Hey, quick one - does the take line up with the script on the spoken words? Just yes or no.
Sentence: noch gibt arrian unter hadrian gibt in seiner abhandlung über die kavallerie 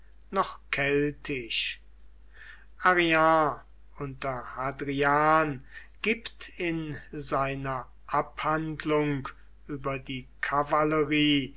no